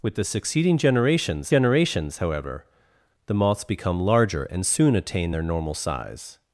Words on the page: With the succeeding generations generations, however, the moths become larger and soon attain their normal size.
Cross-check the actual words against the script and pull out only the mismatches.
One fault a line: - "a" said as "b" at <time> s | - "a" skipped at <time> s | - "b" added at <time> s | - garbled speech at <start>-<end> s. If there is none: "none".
none